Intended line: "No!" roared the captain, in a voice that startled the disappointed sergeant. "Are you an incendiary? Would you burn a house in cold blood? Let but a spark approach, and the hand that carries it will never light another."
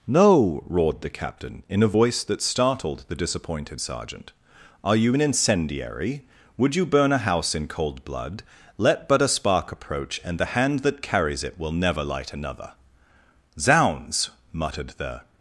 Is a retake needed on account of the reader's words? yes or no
yes